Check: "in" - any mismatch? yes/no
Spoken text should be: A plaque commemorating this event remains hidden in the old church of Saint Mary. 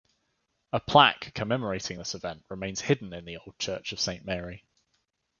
no